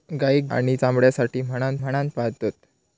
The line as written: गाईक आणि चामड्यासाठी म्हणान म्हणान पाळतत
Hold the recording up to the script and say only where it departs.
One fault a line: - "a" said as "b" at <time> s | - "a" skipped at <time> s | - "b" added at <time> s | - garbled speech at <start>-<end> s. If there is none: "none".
none